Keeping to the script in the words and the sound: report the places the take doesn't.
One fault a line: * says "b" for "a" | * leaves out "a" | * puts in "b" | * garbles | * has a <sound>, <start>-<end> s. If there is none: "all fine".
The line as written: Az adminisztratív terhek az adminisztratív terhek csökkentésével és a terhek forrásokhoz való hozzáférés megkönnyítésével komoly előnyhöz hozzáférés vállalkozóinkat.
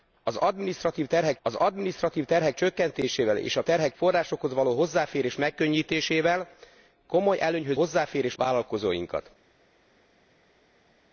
all fine